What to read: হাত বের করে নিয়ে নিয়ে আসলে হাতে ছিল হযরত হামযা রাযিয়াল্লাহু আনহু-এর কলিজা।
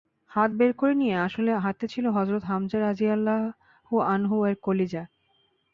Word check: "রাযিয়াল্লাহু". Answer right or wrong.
right